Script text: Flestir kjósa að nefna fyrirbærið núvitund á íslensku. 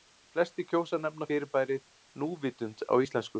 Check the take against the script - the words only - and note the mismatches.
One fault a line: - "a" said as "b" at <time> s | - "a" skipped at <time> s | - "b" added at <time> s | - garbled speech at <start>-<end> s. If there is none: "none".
none